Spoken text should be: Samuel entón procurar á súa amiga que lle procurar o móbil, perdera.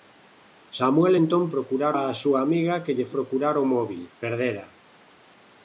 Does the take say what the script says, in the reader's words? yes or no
yes